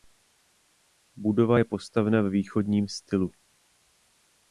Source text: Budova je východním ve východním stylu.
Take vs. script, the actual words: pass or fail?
fail